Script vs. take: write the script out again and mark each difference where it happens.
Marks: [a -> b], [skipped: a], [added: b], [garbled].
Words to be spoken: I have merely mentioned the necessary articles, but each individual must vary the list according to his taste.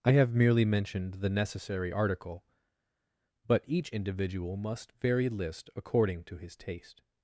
I have merely mentioned the necessary [articles, -> article] but each individual must vary [skipped: the] list according to his taste.